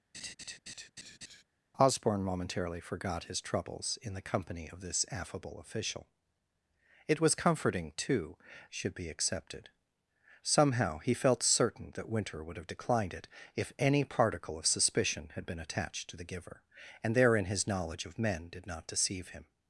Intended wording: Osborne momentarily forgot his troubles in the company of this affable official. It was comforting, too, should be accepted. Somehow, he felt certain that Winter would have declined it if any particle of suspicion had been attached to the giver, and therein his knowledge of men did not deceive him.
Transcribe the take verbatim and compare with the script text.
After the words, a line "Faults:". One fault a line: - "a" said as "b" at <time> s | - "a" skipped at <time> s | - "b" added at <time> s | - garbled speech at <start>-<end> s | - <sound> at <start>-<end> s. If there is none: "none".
Osborne momentarily forgot his troubles in the company of this affable official. It was comforting, too, should be accepted. Somehow, he felt certain that Winter would have declined it if any particle of suspicion had been attached to the giver, and therein his knowledge of men did not deceive him.
Faults:
- laugh at 0.1-1.4 s